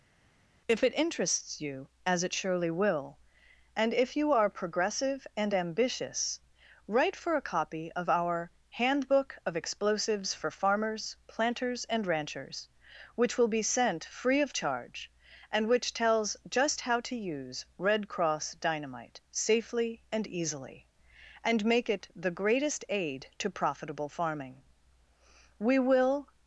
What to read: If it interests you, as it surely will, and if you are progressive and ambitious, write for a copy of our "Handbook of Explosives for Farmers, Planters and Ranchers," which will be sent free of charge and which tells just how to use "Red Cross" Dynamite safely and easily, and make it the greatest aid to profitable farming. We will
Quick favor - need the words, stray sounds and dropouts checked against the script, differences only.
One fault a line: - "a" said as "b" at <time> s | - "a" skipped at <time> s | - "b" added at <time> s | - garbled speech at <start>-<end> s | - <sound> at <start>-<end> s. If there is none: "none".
none